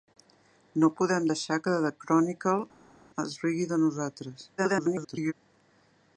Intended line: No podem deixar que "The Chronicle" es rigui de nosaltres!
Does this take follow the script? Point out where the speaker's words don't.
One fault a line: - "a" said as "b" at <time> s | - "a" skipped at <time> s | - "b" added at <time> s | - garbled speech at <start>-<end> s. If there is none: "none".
- garbled speech at 4.6-5.3 s